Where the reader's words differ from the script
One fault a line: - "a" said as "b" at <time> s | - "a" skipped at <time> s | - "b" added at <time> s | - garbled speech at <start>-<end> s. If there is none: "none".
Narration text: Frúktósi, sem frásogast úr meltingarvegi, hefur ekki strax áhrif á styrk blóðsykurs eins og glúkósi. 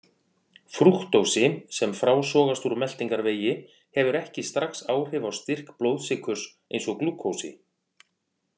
none